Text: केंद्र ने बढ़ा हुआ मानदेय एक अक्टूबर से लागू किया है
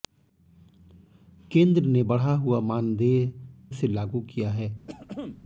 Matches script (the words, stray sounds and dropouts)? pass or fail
fail